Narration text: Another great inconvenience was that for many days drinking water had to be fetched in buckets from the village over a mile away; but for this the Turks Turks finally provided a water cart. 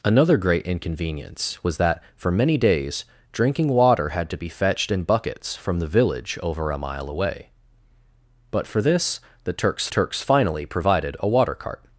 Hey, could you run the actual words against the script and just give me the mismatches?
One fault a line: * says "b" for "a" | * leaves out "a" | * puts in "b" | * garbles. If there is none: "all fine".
all fine